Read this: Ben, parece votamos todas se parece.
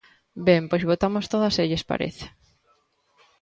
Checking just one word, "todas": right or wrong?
right